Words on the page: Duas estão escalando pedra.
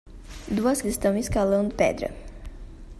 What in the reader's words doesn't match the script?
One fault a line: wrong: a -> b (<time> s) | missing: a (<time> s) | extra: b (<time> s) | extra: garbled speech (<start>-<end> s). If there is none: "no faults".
no faults